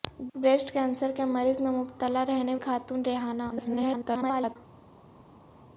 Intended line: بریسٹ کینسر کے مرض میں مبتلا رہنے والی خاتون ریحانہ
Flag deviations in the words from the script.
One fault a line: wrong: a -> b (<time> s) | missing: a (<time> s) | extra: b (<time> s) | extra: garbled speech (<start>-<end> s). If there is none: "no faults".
missing: والی (2.5 s)
extra: garbled speech (3.5-4.6 s)